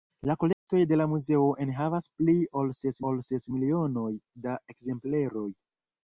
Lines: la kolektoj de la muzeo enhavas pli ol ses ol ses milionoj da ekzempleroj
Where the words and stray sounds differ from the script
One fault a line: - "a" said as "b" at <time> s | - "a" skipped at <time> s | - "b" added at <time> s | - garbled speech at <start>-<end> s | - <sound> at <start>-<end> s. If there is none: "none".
- dropout at 0.5-0.7 s